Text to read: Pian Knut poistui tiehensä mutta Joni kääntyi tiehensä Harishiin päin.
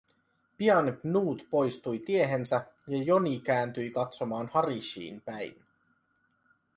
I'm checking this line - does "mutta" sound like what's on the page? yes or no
no